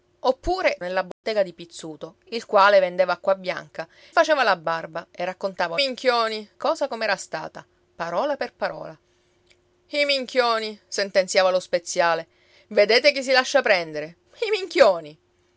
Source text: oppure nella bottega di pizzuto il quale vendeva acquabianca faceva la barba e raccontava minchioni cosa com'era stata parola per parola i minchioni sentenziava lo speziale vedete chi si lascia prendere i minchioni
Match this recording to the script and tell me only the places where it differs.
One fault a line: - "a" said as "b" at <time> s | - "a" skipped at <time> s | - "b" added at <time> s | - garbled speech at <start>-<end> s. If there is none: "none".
none